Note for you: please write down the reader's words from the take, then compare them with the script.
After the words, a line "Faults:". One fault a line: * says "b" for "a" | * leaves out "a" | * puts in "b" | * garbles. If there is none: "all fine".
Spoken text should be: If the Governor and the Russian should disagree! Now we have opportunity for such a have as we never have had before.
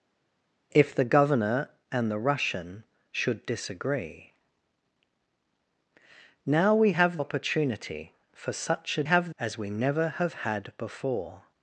If the Governor and the Russian should disagree! Now we have opportunity for such a have as we never have had before.
Faults:
all fine